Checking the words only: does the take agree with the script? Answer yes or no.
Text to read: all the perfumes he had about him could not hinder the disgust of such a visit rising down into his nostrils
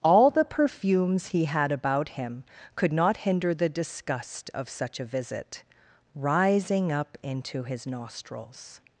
no